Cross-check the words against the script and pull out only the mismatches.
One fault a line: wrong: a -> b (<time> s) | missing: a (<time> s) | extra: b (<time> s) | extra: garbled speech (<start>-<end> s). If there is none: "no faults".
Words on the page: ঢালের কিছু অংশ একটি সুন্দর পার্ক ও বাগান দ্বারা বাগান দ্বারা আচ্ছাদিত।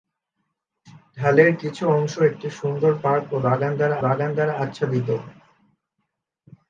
no faults